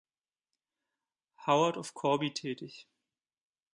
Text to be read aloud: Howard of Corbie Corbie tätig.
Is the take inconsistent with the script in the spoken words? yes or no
yes